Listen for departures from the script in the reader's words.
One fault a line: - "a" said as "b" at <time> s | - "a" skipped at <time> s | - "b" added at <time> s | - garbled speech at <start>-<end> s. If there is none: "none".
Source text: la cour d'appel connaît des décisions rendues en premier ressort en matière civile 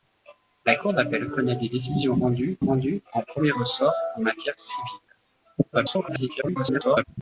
- "rendues" added at 2.6 s
- garbled speech at 5.7-7.0 s